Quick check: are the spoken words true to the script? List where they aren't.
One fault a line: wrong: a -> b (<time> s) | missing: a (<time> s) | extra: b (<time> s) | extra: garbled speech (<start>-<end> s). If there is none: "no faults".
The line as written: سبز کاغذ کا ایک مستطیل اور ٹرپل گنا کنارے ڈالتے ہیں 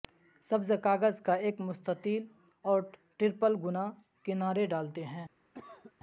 no faults